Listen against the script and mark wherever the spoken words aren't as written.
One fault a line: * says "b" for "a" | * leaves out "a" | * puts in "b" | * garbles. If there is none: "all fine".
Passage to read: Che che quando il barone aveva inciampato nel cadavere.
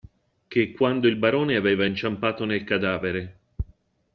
* leaves out "che"